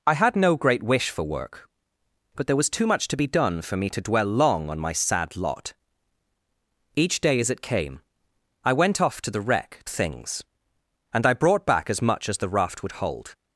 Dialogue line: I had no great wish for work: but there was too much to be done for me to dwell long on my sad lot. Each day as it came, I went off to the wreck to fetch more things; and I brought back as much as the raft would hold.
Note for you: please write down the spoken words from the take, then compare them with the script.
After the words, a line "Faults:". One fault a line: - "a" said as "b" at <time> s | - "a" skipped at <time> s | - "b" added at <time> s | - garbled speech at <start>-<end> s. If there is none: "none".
I had no great wish for work: but there was too much to be done for me to dwell long on my sad lot. Each day as it came, I went off to the wreck things; and I brought back as much as the raft would hold.
Faults:
- "to fetch more" skipped at 9.8 s